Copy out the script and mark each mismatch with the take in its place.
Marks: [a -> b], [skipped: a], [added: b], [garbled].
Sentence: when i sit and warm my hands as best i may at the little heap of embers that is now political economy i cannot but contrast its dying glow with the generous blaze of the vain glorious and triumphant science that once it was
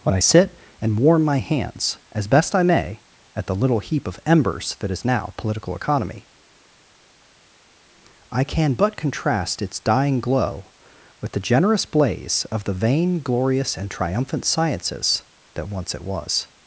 when i sit and warm my hands as best i may at the little heap of embers that is now political economy i [cannot -> can] but contrast its dying glow with the generous blaze of the vain glorious and triumphant [science -> sciences] that once it was